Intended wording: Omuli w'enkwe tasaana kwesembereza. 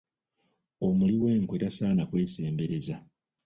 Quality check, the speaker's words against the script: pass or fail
pass